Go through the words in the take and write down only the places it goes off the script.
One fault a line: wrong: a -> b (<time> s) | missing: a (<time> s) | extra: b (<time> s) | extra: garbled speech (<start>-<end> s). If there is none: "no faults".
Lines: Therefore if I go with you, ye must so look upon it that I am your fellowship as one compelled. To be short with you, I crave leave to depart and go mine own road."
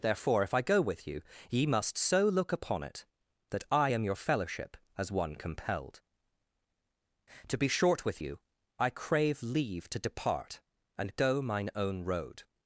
no faults